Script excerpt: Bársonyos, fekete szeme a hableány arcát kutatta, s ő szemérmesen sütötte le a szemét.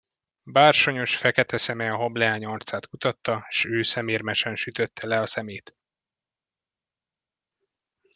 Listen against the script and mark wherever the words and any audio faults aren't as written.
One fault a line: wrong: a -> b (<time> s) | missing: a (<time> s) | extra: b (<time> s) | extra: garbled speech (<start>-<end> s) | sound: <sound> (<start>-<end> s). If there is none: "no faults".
no faults